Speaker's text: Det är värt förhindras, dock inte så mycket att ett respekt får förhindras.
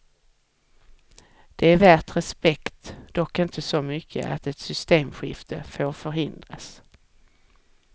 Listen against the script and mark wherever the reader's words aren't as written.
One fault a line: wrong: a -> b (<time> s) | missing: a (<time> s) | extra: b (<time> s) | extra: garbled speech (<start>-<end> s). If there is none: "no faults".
wrong: förhindras -> respekt (2.2 s)
wrong: respekt -> systemskifte (4.6 s)